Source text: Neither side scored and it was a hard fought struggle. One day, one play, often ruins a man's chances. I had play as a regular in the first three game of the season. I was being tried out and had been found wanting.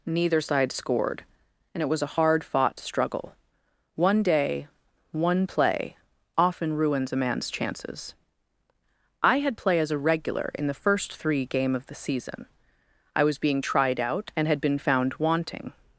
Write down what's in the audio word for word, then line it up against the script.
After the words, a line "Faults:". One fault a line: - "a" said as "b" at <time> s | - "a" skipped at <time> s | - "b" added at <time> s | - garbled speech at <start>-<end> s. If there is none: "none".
Neither side scored and it was a hard fought struggle. One day, one play, often ruins a man's chances. I had play as a regular in the first three game of the season. I was being tried out and had been found wanting.
Faults:
none